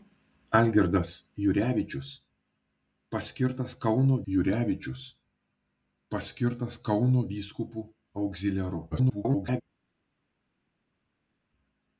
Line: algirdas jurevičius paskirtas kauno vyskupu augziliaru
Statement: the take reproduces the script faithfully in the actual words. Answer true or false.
false